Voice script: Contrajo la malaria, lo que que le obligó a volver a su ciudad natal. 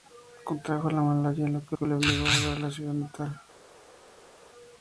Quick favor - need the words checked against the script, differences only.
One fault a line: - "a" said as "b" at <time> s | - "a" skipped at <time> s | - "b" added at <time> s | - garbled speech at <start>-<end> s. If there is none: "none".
none